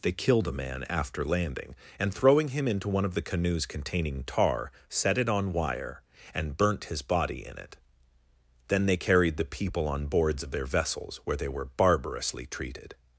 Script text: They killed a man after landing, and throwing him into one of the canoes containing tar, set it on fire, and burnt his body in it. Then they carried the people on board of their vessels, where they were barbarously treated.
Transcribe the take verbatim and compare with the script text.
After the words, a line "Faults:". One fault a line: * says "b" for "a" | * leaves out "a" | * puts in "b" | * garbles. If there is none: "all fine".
They killed a man after landing, and throwing him into one of the canoes containing tar, set it on wire, and burnt his body in it. Then they carried the people on boards of their vessels, where they were barbarously treated.
Faults:
* says "wire" for "fire"
* says "boards" for "board"